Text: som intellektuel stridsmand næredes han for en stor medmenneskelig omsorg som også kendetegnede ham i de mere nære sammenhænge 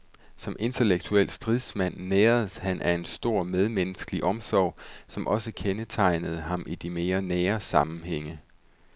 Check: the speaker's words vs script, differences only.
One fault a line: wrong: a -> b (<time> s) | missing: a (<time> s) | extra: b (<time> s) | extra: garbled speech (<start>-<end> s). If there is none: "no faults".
wrong: for -> af (2.8 s)